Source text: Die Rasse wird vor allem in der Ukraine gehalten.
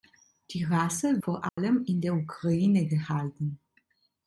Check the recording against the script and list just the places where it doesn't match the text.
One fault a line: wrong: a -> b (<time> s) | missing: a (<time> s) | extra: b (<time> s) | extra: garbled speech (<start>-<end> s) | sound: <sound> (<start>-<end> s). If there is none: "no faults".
missing: wird (1.2 s)
sound: dropout (1.5-1.6 s)